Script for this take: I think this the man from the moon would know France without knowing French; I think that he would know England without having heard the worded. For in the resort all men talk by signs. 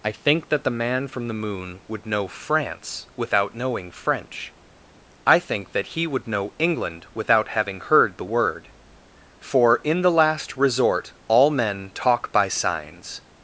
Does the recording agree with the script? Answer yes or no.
no